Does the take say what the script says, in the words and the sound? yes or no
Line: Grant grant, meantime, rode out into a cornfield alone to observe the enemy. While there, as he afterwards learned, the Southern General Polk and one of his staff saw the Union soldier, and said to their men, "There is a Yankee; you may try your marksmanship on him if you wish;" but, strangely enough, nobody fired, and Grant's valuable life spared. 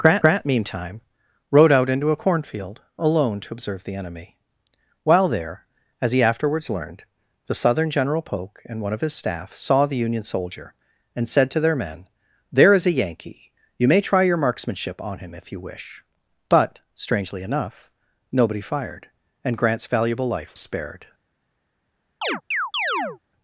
no